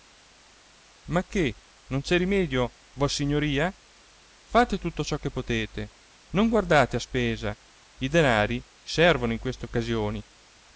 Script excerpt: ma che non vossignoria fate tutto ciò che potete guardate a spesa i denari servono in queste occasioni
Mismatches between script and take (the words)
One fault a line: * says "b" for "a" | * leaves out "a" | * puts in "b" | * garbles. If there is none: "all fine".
* puts in "c'è rimedio"
* puts in "non"